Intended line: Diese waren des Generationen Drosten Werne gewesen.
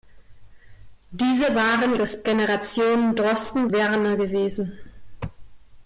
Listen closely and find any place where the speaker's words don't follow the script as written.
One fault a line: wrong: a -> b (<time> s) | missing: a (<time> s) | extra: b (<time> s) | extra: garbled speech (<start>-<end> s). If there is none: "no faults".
no faults